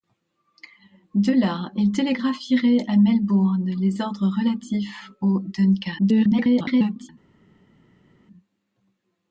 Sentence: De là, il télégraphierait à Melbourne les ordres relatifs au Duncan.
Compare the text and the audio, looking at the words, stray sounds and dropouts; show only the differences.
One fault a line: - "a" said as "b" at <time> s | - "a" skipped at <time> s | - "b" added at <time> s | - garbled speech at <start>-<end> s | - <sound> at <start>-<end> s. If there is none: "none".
- garbled speech at 6.0-7.1 s